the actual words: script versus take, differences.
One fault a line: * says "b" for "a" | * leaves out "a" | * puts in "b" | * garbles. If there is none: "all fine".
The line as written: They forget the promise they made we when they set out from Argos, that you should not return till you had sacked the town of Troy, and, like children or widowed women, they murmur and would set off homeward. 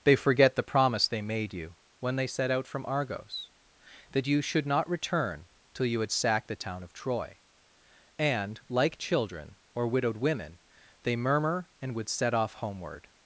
* says "you" for "we"